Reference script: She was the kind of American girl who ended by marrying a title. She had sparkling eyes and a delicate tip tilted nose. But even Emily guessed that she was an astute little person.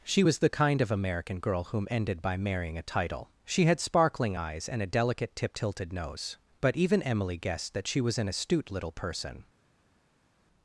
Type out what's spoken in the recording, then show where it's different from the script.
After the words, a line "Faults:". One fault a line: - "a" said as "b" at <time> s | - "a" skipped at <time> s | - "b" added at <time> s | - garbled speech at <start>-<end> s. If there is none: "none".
She was the kind of American girl whom ended by marrying a title. She had sparkling eyes and a delicate tip tilted nose. But even Emily guessed that she was an astute little person.
Faults:
- "who" said as "whom" at 1.6 s